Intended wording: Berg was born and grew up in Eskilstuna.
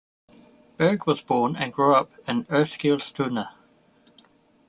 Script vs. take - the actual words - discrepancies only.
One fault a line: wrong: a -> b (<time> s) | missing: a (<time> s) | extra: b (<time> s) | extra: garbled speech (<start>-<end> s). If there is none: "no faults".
no faults